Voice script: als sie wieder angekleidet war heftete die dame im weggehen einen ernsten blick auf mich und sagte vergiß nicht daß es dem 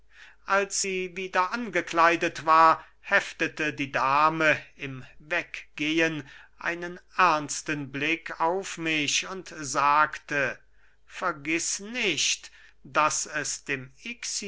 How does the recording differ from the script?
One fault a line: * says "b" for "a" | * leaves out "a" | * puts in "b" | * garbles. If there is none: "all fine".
all fine